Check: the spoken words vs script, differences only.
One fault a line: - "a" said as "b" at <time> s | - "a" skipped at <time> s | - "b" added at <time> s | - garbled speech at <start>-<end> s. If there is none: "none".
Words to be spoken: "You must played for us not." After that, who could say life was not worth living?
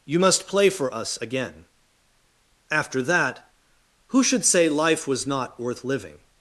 - "played" said as "play" at 0.5 s
- "not" said as "again" at 1.2 s
- "could" said as "should" at 4.2 s